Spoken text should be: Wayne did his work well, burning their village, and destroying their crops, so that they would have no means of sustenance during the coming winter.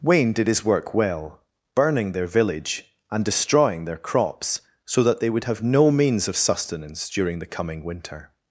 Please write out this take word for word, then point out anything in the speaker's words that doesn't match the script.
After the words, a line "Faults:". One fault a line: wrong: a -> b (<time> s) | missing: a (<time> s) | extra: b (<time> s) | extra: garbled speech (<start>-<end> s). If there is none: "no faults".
Wayne did his work well, burning their village, and destroying their crops, so that they would have no means of sustenance during the coming winter.
Faults:
no faults